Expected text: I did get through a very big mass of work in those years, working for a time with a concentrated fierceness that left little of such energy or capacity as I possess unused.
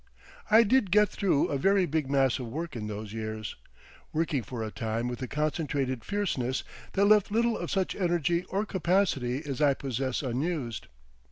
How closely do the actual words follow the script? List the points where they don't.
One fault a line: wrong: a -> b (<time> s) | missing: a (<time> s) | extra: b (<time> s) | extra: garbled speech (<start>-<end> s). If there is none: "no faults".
no faults